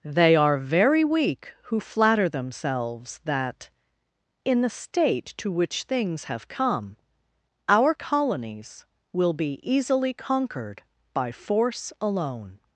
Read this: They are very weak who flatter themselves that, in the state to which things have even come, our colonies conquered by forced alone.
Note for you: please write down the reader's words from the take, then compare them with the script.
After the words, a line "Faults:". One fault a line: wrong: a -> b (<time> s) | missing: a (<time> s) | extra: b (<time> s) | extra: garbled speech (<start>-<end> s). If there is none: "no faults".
They are very weak who flatter themselves that, in the state to which things have come, our colonies will be easily conquered by force alone.
Faults:
missing: even (6.5 s)
extra: will be easily (9.1 s)
wrong: forced -> force (11.3 s)